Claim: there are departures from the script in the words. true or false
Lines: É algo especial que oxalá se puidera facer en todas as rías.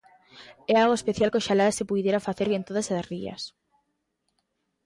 false